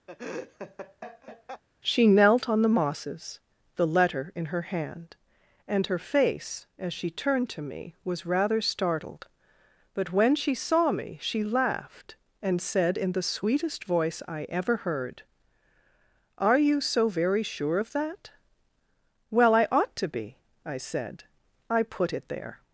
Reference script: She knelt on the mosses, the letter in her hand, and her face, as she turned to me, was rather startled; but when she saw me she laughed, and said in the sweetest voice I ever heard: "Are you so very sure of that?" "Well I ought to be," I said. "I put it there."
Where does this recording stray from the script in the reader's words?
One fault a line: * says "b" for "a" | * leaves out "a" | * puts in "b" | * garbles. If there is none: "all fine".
all fine